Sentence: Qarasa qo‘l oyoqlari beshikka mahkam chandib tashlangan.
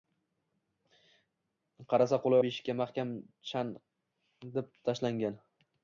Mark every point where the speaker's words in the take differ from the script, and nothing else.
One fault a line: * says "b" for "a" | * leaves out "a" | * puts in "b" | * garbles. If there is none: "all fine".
* leaves out "oyoqlari"